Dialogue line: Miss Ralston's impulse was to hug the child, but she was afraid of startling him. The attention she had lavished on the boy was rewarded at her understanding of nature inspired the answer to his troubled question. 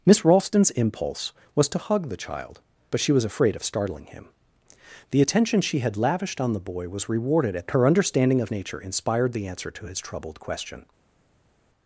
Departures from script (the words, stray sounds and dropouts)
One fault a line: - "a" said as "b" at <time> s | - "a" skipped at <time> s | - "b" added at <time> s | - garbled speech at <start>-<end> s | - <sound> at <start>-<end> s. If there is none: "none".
none